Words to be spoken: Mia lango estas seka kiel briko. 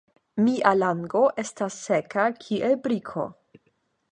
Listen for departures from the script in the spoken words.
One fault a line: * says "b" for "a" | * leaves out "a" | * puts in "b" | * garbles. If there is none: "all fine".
all fine